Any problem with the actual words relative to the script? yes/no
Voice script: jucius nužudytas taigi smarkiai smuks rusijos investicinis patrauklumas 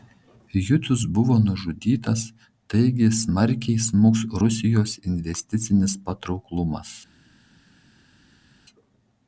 yes